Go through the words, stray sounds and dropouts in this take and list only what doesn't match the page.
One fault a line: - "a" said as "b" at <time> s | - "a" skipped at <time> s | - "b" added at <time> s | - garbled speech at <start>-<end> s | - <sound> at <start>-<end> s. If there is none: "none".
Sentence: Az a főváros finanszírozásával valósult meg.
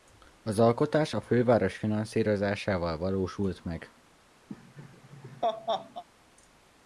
- "alkotás" added at 0.6 s
- laugh at 4.5-6.0 s